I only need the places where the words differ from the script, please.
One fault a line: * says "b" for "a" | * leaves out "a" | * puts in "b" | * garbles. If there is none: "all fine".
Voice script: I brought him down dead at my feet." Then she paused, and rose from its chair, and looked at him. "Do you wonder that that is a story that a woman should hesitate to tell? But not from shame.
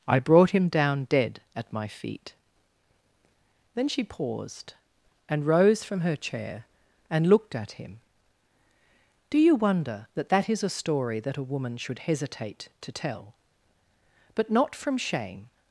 * says "her" for "its"